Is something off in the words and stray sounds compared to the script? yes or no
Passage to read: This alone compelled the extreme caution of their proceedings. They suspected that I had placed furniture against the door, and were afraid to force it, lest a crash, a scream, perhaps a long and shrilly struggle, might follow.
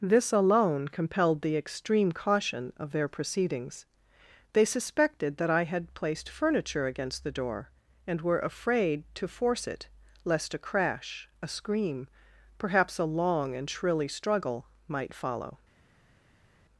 no